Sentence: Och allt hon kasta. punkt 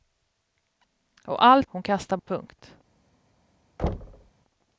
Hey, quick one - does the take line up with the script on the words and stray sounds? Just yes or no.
no